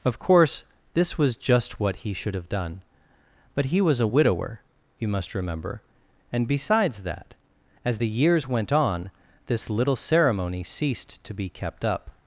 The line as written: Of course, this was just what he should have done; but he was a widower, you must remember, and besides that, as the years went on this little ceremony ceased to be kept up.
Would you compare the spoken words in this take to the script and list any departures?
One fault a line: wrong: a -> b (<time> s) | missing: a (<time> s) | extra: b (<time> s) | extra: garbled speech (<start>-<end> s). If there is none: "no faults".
no faults